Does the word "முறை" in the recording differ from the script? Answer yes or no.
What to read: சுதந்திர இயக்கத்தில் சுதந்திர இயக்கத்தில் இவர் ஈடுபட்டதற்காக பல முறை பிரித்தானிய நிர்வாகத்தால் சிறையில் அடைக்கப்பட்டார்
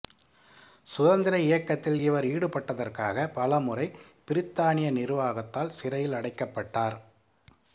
no